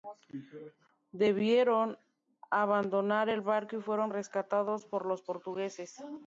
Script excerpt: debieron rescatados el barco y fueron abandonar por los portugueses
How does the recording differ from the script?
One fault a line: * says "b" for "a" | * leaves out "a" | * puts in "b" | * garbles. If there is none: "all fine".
* says "abandonar" for "rescatados"
* says "rescatados" for "abandonar"